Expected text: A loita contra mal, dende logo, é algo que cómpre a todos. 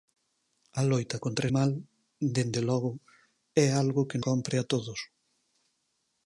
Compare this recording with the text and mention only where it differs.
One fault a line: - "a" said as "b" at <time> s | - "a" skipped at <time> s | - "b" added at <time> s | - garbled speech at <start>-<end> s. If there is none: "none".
none